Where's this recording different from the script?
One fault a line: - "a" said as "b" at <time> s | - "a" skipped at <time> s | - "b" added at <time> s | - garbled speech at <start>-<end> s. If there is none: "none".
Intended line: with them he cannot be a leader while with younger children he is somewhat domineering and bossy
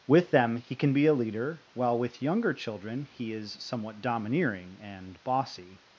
- "cannot" said as "can" at 0.8 s